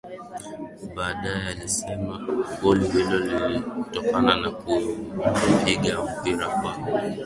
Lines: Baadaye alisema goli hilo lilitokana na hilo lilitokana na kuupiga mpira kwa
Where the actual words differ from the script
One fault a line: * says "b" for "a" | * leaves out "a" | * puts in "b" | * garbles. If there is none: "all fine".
* leaves out "hilo lilitokana na"